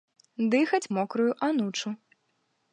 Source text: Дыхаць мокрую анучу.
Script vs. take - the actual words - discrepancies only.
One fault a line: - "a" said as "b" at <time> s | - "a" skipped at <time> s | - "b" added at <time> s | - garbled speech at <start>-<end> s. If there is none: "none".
none